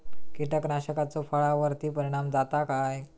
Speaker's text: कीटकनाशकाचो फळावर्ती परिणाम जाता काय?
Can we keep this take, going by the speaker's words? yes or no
yes